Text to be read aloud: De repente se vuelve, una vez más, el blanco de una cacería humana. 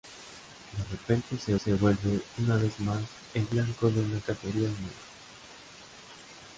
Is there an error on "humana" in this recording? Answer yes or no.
no